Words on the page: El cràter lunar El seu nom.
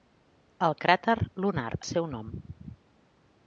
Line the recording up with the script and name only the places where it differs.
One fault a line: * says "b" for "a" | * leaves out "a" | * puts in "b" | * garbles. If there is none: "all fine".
all fine